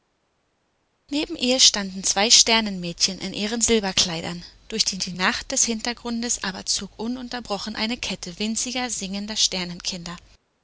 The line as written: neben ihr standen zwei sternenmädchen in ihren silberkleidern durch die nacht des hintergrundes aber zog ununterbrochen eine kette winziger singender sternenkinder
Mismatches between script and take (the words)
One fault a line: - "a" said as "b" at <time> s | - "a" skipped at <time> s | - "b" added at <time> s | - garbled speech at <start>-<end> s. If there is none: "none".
- "die" added at 5.0 s